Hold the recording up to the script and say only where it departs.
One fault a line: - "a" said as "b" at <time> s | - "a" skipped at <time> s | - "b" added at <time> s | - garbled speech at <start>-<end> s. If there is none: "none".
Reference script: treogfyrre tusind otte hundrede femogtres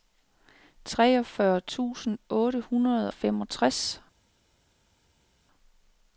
none